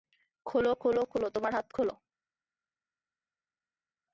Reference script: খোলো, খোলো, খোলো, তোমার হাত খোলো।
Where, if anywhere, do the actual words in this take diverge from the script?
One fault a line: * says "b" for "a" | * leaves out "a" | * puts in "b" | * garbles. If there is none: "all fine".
all fine